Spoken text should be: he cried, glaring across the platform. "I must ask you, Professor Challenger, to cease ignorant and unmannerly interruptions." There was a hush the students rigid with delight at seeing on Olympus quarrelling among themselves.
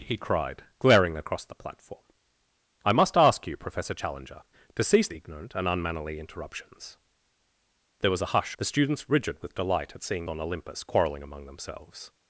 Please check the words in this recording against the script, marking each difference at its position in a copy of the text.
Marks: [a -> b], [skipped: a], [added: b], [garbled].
he cried, glaring across the platform. "I must ask you, Professor Challenger, to cease ignorant and unmannerly interruptions." There was a hush the students rigid with delight at seeing on Olympus quarrelling among themselves.